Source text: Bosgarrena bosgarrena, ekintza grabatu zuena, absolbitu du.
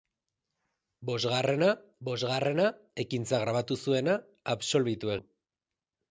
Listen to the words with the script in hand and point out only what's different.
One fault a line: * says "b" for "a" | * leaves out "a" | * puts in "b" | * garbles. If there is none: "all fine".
all fine